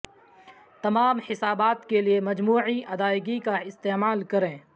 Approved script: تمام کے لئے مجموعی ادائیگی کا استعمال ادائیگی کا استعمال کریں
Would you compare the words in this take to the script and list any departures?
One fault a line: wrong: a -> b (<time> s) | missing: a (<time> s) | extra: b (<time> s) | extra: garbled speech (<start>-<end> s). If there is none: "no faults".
extra: حسابات (1.3 s)
missing: ادائیگی کا استعمال (4.2 s)